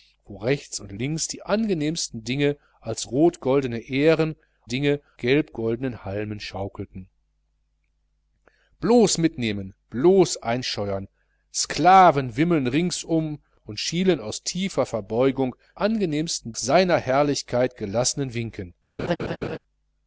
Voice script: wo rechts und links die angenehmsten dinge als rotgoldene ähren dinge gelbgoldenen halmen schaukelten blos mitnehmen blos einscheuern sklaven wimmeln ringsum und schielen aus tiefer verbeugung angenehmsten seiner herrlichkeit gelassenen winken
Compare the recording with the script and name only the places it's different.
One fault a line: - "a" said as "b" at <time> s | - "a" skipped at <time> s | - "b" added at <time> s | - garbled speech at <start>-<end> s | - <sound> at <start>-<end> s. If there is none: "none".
- laugh at 19.0-19.6 s